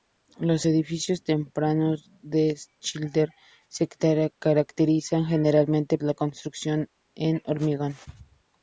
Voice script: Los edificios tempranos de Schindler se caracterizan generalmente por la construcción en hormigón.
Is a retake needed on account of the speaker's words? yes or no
yes